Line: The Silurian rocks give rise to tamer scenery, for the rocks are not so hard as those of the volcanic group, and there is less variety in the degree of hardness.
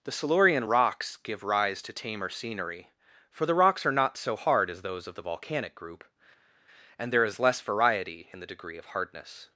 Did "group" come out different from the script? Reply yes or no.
no